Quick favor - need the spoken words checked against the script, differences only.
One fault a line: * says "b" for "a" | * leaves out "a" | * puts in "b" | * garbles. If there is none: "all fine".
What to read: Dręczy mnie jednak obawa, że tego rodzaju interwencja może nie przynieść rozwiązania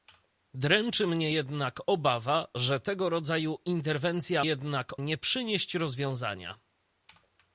* says "jednak" for "może"